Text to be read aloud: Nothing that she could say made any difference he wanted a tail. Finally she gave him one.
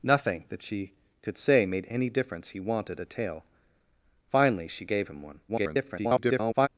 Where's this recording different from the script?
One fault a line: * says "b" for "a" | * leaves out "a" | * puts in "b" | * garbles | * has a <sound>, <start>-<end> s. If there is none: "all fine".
* garbles